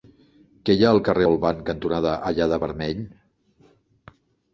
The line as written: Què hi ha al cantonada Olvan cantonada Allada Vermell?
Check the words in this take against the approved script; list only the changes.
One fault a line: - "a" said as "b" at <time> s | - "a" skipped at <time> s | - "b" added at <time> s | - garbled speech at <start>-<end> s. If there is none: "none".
- "cantonada" said as "carrer" at 1.1 s